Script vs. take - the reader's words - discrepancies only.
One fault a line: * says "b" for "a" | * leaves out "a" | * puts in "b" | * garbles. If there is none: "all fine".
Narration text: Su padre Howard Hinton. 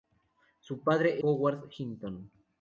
all fine